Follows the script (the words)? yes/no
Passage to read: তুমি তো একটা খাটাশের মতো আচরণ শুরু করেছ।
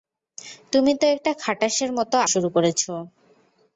no